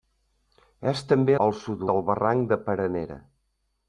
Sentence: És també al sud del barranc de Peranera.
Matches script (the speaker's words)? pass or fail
pass